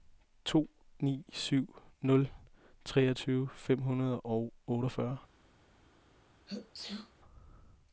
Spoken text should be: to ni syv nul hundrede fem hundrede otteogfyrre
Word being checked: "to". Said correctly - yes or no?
yes